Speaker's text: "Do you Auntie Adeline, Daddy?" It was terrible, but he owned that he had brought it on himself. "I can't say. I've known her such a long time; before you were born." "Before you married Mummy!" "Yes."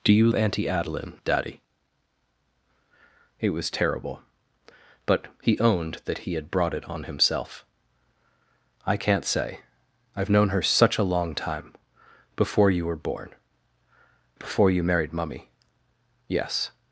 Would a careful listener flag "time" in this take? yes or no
no